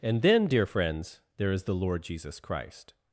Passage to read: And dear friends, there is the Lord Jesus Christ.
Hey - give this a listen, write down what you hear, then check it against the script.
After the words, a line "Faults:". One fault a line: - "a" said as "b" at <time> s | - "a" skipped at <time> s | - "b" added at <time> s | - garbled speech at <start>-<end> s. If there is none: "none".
And then, dear friends, there is the Lord Jesus Christ.
Faults:
- "then" added at 0.2 s